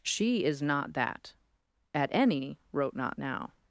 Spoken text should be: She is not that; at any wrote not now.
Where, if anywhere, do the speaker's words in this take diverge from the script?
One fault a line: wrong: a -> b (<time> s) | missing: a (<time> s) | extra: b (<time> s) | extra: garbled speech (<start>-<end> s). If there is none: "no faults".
no faults